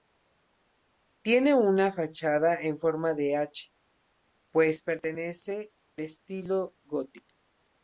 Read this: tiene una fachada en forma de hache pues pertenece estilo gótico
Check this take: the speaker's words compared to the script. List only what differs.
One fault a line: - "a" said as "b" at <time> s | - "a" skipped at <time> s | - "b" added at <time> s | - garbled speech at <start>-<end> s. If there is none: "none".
none